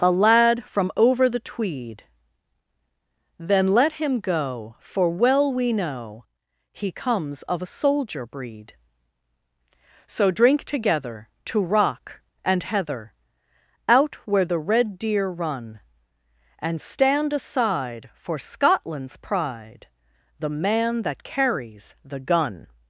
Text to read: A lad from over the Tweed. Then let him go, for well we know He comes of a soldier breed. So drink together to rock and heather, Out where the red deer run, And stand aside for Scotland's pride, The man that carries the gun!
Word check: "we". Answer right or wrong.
right